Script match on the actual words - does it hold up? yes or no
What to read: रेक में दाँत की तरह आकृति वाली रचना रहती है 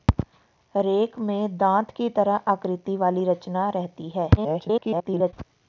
no